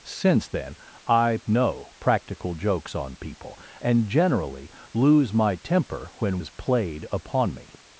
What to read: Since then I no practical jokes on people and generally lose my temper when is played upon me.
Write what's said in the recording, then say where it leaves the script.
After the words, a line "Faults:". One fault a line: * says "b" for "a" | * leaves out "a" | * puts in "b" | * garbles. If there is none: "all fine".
Since then I no practical jokes on people and generally lose my temper when is played upon me.
Faults:
all fine